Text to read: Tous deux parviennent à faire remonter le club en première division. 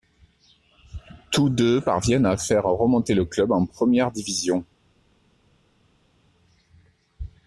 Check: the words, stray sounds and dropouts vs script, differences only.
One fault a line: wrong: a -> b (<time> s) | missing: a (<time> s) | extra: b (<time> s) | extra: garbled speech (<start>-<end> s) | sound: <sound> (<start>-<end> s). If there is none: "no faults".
no faults